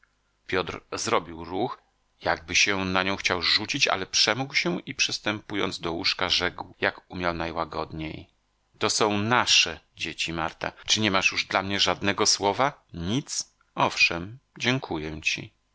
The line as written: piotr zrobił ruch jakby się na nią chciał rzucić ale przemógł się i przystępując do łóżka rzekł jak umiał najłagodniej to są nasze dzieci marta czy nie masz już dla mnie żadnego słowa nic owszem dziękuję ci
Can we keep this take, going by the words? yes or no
yes